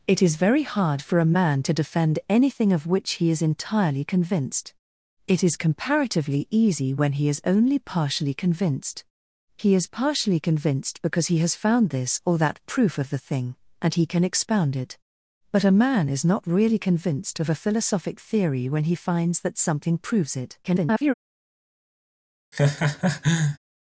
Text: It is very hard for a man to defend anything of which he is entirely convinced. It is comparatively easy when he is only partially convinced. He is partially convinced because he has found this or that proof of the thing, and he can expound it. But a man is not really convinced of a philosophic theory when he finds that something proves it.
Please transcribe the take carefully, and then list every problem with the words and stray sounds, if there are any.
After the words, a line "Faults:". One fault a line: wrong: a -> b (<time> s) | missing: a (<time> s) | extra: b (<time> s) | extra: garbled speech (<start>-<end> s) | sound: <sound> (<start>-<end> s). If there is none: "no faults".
It is very hard for a man to defend anything of which he is entirely convinced. It is comparatively easy when he is only partially convinced. He is partially convinced because he has found this or that proof of the thing, and he can expound it. But a man is not really convinced of a philosophic theory when he finds that something proves it. [garbled]
Faults:
extra: garbled speech (20.6-21.1 s)
sound: laugh (22.5-23.6 s)